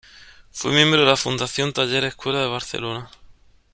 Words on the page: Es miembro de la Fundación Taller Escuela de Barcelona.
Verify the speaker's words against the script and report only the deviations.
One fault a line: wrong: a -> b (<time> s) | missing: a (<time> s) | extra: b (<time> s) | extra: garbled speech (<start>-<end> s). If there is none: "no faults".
wrong: Es -> Fue (0.5 s)